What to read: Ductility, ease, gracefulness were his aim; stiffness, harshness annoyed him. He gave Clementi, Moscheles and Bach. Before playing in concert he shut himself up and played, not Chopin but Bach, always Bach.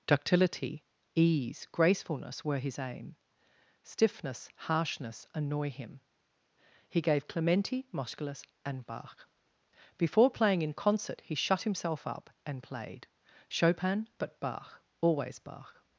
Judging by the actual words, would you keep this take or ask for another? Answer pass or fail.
fail